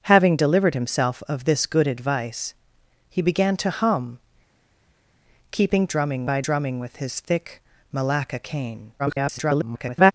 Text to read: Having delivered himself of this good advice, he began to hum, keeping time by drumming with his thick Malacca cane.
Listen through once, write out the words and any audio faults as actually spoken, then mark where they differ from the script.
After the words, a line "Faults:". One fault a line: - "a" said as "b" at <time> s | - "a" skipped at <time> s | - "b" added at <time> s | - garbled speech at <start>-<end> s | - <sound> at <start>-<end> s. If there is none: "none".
Having delivered himself of this good advice, he began to hum, keeping drumming by drumming with his thick Malacca cane. [garbled]
Faults:
- "time" said as "drumming" at 5.8 s
- garbled speech at 9.0-10.1 s